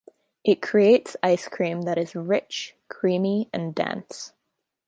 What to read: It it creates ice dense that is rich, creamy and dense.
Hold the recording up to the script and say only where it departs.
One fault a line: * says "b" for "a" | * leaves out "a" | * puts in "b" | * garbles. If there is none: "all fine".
* leaves out "it"
* says "cream" for "dense"